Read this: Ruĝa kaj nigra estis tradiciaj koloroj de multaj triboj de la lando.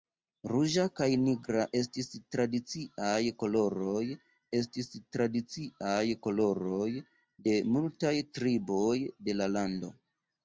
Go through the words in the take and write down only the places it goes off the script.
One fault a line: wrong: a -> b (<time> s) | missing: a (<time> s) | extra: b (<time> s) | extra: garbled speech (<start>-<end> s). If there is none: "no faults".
extra: estis tradiciaj koloroj (4.6 s)